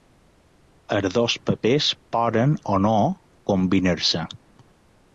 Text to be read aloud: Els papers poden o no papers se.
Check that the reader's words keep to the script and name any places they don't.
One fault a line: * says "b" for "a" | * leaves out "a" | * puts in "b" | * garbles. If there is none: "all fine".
* puts in "dos"
* says "combinar" for "papers"